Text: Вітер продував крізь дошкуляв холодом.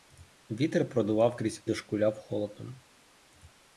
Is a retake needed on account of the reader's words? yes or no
no